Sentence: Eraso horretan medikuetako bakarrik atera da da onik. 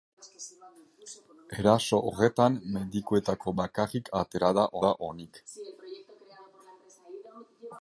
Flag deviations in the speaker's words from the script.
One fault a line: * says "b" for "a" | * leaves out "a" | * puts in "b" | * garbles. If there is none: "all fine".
all fine